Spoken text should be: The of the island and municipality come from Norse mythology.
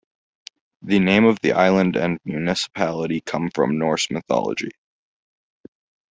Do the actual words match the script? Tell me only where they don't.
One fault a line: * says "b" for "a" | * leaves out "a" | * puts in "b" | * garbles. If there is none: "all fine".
* puts in "name"